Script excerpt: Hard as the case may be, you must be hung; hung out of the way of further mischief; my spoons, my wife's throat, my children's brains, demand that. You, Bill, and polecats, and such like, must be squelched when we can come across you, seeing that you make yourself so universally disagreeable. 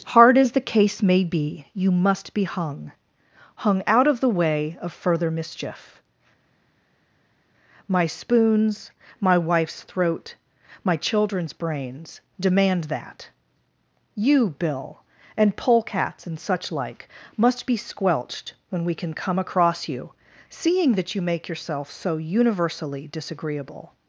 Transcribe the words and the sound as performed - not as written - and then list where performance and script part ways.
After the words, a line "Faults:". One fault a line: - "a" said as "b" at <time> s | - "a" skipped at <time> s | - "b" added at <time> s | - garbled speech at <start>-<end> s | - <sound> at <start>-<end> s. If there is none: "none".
Hard as the case may be, you must be hung; hung out of the way of further mischief; my spoons, my wife's throat, my children's brains, demand that. You, Bill, and polecats, and such like, must be squelched when we can come across you, seeing that you make yourself so universally disagreeable.
Faults:
none